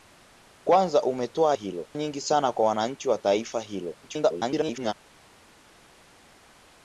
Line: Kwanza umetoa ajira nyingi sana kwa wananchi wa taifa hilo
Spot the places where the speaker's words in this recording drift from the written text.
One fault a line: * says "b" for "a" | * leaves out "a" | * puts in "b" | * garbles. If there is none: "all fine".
* says "hilo" for "ajira"
* garbles